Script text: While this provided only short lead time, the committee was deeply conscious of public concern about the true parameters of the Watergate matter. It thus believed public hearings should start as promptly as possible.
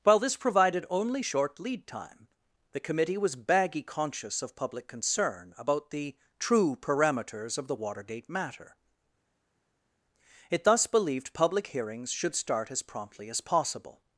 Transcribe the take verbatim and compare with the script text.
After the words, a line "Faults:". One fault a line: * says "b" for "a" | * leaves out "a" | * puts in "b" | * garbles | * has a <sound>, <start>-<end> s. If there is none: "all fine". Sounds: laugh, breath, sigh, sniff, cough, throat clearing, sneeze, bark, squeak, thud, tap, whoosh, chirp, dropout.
While this provided only short lead time, the committee was baggy conscious of public concern about the true parameters of the Watergate matter. It thus believed public hearings should start as promptly as possible.
Faults:
* says "baggy" for "deeply"